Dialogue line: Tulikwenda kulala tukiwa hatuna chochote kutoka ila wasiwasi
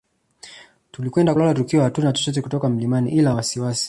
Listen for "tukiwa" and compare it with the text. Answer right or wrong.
right